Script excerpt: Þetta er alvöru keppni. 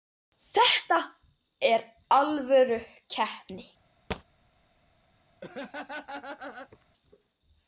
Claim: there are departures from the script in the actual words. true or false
false